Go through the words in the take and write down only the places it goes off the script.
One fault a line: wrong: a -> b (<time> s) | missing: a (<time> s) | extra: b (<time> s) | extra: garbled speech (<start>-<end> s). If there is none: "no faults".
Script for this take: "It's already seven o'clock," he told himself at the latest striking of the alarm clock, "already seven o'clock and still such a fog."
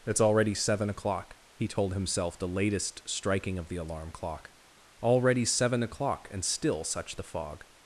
missing: at (2.4 s)
wrong: a -> the (7.2 s)